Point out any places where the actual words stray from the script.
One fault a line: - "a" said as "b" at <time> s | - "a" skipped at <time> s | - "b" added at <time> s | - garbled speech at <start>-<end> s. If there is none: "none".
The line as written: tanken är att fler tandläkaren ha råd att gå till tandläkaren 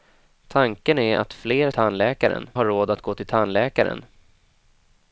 none